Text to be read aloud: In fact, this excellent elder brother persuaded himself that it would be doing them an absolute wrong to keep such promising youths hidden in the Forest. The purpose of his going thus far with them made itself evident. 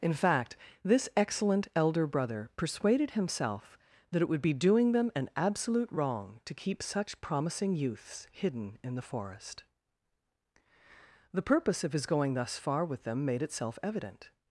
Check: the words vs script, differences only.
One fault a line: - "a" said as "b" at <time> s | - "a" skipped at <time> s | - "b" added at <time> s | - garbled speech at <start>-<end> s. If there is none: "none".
none